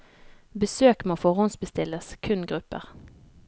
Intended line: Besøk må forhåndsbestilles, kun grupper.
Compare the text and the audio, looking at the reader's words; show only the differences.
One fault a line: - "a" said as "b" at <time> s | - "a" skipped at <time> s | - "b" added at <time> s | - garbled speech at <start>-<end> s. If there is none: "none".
none